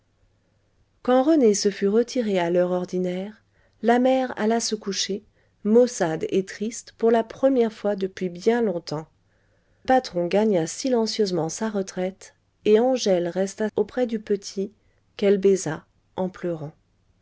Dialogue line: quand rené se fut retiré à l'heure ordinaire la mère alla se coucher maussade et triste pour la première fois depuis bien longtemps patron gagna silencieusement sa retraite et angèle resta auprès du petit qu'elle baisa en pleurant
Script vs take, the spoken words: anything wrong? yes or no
no